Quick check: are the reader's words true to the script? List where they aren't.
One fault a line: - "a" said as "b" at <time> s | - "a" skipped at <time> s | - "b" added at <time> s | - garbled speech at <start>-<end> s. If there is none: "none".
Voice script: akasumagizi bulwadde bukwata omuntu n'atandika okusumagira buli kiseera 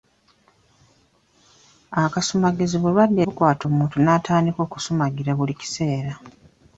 none